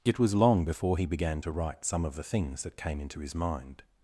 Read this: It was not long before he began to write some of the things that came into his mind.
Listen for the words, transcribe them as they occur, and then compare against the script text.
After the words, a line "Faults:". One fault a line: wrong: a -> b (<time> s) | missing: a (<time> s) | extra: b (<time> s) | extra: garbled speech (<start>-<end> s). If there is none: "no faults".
It was long before he began to write some of the things that came into his mind.
Faults:
missing: not (0.3 s)